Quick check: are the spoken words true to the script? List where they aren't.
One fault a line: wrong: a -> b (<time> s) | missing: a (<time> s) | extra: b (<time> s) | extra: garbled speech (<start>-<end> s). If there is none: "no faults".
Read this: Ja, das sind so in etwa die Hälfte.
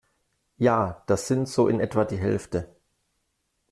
no faults